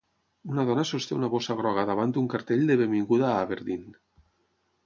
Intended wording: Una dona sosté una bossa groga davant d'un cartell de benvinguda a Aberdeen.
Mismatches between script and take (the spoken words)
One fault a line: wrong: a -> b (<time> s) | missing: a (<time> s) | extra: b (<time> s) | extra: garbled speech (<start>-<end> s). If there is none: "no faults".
no faults